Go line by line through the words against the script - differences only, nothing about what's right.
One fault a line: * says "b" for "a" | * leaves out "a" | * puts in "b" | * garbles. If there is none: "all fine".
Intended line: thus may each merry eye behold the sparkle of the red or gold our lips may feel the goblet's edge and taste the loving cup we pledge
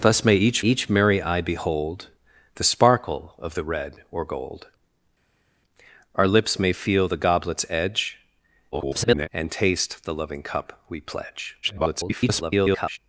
* puts in "each"
* garbles
* garbles